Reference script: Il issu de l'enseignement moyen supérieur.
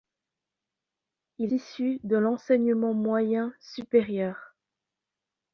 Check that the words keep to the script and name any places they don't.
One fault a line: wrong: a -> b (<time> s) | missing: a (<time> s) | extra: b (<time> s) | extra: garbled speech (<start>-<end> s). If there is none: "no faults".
no faults